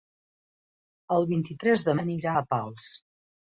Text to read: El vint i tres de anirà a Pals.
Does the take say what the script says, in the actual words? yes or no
yes